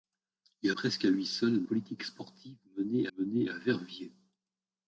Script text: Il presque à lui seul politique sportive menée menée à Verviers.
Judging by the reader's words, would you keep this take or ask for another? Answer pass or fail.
pass